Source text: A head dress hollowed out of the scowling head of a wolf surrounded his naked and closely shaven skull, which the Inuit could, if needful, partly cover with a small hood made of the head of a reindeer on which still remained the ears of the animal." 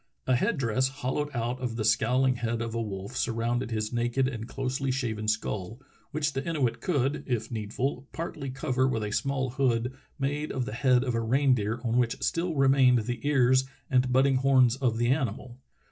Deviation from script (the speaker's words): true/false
true